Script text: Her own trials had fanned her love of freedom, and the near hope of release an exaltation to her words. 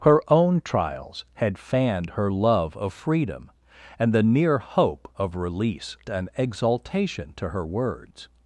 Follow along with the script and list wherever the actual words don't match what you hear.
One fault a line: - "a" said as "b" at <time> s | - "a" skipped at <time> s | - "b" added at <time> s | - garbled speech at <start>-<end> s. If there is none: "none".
none